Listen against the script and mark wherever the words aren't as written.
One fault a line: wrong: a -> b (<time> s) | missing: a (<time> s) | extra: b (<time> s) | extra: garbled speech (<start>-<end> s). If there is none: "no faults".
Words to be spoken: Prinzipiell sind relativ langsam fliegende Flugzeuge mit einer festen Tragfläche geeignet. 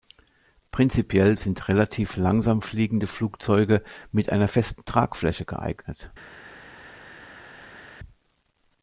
no faults